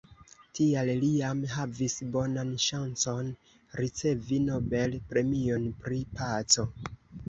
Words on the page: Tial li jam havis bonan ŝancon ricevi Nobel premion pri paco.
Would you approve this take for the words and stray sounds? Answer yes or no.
yes